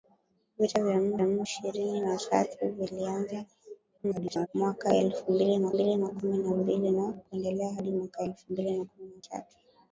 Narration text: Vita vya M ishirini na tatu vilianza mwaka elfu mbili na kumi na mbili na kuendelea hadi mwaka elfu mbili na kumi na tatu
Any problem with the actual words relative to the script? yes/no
yes